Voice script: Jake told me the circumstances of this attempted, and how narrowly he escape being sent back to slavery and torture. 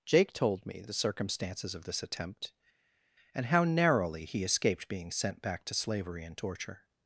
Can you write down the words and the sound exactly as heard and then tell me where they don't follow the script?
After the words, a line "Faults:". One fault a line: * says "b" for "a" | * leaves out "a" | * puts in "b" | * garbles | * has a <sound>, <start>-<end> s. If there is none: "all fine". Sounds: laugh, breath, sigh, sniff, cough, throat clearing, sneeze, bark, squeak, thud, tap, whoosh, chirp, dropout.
Jake told me the circumstances of this attempt, and how narrowly he escaped being sent back to slavery and torture.
Faults:
* says "attempt" for "attempted"
* says "escaped" for "escape"